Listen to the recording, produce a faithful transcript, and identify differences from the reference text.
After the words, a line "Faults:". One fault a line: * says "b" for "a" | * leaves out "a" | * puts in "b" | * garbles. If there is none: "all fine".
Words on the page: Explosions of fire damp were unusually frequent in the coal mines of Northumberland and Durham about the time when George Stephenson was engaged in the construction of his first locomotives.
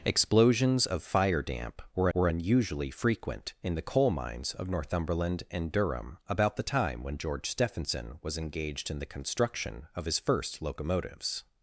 Explosions of fire damp were were unusually frequent in the coal mines of Northumberland and Durham about the time when George Stephenson was engaged in the construction of his first locomotives.
Faults:
* puts in "were"